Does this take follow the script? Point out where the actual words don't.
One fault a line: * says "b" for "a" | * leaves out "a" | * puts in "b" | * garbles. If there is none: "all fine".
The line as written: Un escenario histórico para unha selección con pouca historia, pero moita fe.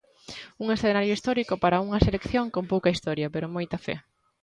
all fine